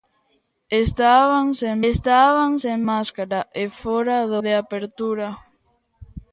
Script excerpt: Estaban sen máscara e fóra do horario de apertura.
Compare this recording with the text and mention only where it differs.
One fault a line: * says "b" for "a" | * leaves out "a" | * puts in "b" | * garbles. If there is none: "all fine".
* puts in "estaban sen"
* leaves out "horario"